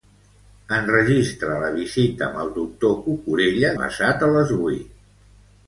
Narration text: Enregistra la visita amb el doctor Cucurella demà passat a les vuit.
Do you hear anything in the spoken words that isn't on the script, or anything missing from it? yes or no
yes